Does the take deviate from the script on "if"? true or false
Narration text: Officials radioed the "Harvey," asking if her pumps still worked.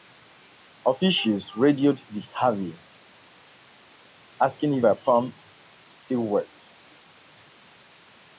false